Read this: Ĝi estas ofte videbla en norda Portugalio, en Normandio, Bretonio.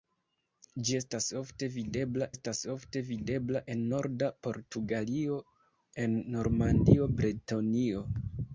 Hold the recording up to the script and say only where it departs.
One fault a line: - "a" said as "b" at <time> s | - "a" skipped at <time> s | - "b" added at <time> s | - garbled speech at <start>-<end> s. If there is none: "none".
- "estas ofte videbla" added at 2.3 s